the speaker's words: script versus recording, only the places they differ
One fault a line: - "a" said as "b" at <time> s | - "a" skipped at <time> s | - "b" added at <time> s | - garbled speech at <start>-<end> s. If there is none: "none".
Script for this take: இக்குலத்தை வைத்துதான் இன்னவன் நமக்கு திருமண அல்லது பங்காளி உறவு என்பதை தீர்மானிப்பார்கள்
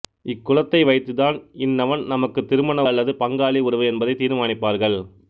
none